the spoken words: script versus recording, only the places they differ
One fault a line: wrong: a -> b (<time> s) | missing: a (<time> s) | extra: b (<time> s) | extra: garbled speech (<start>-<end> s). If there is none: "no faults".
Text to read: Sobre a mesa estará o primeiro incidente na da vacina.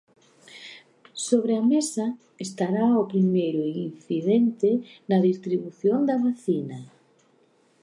extra: distribución (5.3 s)